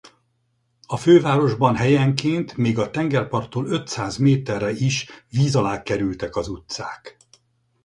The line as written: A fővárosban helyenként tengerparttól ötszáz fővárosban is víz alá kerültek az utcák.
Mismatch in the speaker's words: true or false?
true